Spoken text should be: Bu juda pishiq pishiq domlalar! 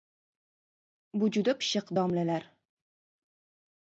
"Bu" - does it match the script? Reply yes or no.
yes